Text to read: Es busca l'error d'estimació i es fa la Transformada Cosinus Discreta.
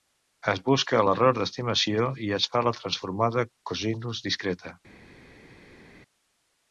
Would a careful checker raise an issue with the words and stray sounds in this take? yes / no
no